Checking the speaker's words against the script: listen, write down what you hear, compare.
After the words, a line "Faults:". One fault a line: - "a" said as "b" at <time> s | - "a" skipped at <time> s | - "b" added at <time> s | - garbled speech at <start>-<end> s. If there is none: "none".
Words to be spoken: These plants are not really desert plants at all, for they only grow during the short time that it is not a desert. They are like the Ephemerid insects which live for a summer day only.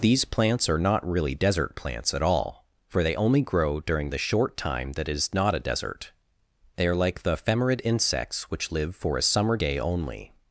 These plants are not really desert plants at all, for they only grow during the short time that is not a desert. They are like the Ephemerid insects which live for a summer day only.
Faults:
- "it" skipped at 5.1 s